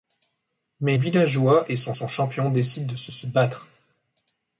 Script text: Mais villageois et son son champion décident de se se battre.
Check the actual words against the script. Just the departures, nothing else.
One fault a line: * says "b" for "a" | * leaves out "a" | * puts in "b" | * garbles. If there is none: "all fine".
all fine